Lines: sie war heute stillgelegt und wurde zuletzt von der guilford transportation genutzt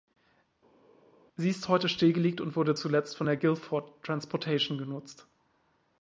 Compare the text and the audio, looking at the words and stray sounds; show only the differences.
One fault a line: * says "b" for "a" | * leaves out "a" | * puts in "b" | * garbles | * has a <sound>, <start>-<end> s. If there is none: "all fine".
* says "ist" for "war"